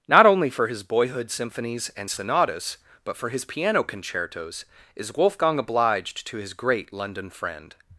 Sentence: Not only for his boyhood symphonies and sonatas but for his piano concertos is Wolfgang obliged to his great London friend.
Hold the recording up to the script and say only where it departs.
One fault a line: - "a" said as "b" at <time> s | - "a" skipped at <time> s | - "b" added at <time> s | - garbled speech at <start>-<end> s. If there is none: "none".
none